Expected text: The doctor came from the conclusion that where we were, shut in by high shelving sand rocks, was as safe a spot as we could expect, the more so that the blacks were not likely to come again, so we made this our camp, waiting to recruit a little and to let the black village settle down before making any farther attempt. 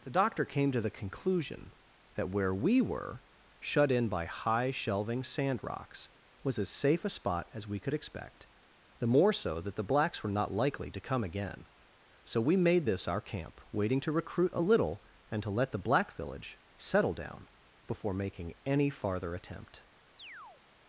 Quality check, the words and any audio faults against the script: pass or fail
fail